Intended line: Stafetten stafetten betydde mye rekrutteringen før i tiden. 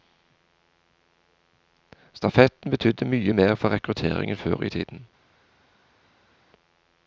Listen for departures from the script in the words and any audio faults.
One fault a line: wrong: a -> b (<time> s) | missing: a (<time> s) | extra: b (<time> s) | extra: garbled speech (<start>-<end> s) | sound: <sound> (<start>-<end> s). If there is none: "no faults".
missing: stafetten (2.7 s)
extra: mer for (3.3 s)